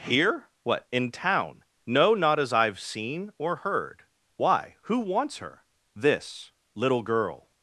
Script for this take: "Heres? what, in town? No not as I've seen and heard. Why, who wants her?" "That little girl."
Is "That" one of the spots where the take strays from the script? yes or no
yes